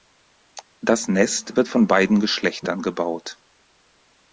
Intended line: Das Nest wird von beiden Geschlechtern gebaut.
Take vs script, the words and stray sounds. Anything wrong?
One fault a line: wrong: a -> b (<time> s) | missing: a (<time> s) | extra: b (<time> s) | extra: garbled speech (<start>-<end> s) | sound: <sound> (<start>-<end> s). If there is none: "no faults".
no faults